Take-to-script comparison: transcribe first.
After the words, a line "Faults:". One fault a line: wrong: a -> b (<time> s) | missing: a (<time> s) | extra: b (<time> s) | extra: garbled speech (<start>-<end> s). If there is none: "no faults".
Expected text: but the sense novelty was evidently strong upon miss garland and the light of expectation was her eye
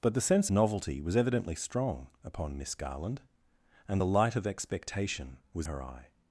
but the sense novelty was evidently strong upon miss garland and the light of expectation was her eye
Faults:
no faults